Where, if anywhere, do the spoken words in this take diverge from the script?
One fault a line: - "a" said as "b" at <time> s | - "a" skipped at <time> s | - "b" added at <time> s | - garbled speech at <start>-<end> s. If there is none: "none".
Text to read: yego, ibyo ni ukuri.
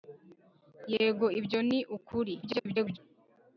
- garbled speech at 2.4-3.0 s